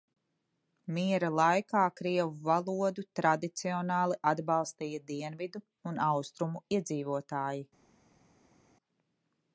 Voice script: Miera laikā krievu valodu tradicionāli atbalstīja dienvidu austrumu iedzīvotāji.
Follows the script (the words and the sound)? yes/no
no